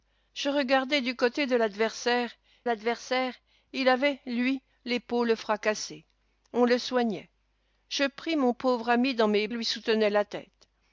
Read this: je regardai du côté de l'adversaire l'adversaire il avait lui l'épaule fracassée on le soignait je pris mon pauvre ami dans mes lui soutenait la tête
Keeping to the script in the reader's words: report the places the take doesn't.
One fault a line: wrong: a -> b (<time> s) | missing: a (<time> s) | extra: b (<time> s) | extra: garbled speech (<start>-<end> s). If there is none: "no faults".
no faults